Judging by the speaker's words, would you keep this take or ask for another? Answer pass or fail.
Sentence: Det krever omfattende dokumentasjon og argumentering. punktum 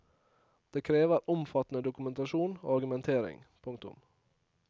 pass